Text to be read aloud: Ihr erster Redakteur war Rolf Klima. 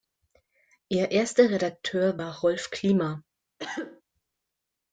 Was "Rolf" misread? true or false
false